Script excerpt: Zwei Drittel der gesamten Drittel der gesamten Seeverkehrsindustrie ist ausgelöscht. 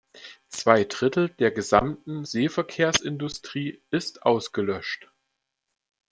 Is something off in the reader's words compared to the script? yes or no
yes